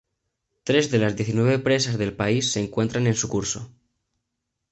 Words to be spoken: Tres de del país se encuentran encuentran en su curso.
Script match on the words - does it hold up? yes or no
no